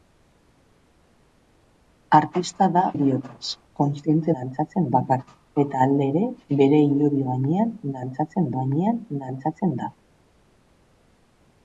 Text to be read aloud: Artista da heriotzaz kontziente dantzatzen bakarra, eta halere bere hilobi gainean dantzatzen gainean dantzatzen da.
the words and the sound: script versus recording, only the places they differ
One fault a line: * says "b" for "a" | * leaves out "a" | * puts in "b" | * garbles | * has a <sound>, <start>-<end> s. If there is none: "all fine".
all fine